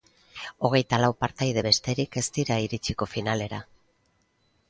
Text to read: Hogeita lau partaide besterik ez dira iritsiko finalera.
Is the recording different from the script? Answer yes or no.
no